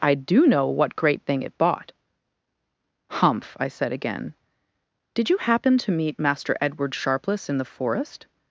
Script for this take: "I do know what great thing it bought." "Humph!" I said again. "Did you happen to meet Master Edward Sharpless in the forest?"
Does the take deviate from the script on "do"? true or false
false